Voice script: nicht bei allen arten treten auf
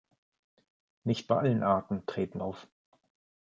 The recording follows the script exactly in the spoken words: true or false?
true